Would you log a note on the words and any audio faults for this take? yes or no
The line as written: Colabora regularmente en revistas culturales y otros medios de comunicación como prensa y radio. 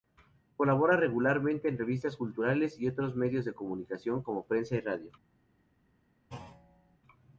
yes